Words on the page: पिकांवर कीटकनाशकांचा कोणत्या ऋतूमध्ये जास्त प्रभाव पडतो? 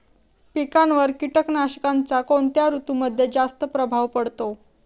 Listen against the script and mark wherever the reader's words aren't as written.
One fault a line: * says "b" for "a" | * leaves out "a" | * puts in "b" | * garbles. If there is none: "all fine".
all fine